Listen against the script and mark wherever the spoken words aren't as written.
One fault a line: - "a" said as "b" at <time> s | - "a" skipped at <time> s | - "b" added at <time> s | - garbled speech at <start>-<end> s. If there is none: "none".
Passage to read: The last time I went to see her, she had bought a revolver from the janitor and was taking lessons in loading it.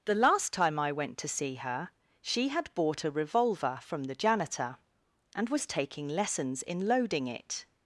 none